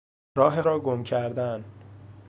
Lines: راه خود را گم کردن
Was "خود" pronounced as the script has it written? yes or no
no